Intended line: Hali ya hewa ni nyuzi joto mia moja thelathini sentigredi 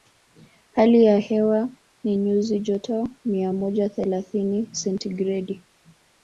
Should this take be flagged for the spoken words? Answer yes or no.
no